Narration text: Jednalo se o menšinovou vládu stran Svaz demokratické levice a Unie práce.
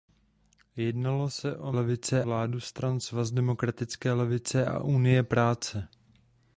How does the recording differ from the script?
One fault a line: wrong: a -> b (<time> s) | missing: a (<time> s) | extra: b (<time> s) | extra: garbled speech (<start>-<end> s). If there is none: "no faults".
wrong: menšinovou -> levice (1.7 s)